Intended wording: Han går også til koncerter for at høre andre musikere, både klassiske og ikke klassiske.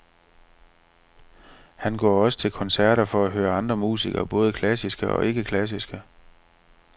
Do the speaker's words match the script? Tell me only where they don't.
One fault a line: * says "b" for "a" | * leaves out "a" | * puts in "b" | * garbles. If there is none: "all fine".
all fine